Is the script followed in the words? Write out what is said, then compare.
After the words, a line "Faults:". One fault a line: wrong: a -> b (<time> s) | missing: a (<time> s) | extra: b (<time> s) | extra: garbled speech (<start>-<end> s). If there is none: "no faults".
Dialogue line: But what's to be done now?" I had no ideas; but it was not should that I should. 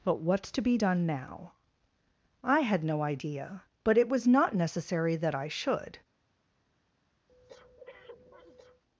But what's to be done now?" I had no idea; but it was not necessary that I should.
Faults:
wrong: ideas -> idea (3.0 s)
wrong: should -> necessary (4.5 s)